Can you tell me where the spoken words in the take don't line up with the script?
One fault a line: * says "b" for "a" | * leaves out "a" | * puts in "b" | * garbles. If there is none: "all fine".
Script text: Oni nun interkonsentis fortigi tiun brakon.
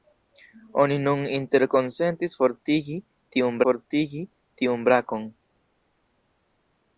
* puts in "fortigi tiun"